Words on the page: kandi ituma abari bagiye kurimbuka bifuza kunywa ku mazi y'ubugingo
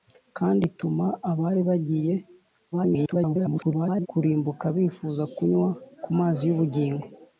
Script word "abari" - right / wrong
right